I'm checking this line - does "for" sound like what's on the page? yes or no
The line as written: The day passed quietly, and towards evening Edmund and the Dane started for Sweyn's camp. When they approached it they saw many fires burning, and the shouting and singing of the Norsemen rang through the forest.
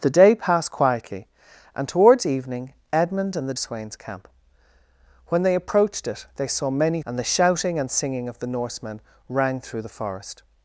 no